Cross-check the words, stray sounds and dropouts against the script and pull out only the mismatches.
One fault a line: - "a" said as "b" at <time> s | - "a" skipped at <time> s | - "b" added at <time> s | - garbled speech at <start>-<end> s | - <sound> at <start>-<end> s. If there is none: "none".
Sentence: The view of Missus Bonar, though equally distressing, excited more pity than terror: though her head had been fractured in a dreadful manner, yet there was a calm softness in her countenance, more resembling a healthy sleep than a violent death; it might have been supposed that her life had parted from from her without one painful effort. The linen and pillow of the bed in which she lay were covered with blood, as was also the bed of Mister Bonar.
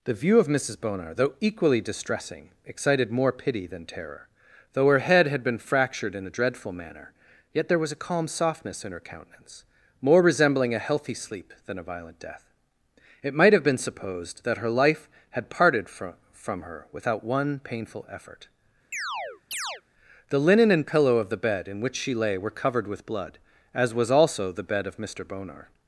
- chirp at 18.9-19.8 s